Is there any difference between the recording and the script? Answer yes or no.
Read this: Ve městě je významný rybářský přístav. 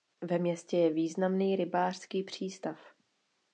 no